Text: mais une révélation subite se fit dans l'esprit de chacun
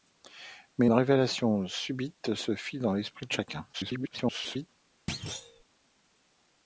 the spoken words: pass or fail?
fail